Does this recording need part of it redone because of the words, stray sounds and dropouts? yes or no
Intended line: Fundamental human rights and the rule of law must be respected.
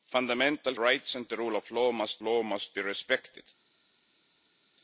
yes